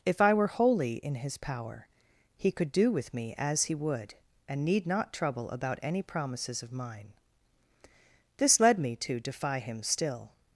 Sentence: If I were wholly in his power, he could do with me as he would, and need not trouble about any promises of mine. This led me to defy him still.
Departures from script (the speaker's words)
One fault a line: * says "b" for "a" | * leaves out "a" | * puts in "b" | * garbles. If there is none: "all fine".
all fine